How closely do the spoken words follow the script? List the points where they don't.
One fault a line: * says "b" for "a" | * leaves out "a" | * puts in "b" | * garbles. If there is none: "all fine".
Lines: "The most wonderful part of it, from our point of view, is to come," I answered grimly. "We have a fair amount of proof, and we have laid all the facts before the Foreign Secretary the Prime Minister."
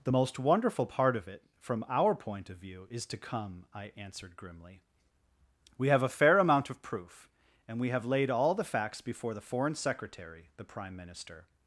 all fine